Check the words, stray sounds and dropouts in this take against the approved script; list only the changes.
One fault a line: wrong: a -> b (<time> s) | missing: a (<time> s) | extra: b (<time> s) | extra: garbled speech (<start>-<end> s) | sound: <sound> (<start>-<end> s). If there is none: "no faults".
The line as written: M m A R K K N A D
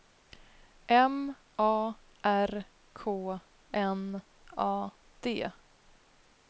missing: m (1.4 s)
missing: K (3.4 s)